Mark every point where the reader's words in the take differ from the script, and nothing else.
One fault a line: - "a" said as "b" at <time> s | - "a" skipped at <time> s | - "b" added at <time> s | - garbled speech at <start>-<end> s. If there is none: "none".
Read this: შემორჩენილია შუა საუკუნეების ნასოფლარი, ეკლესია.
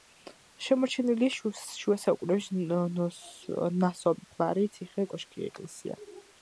- "ციხე კოშკი" added at 4.8 s